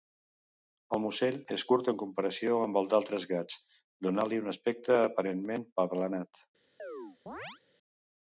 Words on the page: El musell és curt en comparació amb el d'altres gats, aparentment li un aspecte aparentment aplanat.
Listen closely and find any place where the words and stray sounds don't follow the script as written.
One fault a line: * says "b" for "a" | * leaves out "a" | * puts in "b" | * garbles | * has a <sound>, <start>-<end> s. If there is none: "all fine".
* says "donant" for "aparentment"
* has a chirp, 6.8-7.6 s